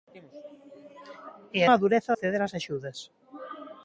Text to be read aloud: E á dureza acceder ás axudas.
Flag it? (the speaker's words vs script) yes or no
no